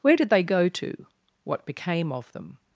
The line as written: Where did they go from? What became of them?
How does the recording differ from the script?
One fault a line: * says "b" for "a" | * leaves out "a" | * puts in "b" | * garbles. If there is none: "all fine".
* says "to" for "from"